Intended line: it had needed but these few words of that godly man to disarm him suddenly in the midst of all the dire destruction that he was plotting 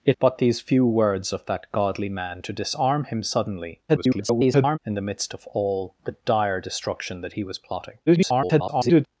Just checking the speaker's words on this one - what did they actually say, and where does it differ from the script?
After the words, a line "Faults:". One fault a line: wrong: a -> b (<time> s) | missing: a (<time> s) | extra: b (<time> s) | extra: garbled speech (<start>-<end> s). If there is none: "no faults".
it but these few words of that godly man to disarm him suddenly [garbled] in the midst of all the dire destruction that he was plotting [garbled]
Faults:
missing: had needed (0.2 s)
extra: garbled speech (3.9-4.8 s)
extra: garbled speech (8.1-9.1 s)